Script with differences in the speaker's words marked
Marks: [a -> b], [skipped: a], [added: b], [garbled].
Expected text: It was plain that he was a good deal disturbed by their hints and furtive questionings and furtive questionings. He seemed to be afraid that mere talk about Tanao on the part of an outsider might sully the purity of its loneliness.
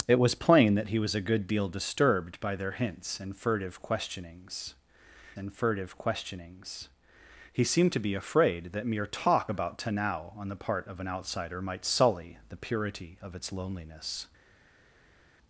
It was plain that he was a good deal disturbed by their hints and furtive questionings and furtive questionings. He seemed to be afraid that mere talk about Tanao on the part of an outsider might sully the purity of its loneliness.